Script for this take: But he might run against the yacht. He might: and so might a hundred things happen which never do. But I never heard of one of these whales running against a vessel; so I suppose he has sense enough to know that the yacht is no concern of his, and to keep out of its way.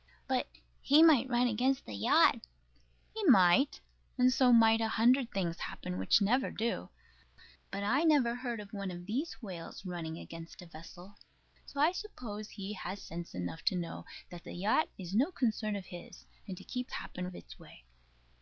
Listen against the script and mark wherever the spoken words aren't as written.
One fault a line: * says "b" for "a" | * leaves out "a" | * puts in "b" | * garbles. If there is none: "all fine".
* says "happen" for "out"